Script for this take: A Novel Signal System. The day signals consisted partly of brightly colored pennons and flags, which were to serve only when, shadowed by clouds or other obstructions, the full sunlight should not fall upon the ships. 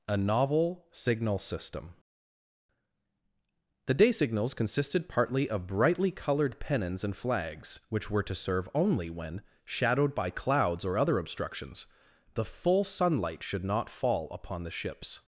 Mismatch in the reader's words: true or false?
false